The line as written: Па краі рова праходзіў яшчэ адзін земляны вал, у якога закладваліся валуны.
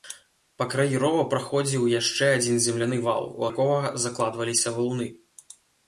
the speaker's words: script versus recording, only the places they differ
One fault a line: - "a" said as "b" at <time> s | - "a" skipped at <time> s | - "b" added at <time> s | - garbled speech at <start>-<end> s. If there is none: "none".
none